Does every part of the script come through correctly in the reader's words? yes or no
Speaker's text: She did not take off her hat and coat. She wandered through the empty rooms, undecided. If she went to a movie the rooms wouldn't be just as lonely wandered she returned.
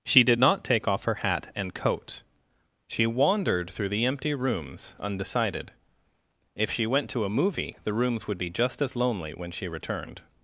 no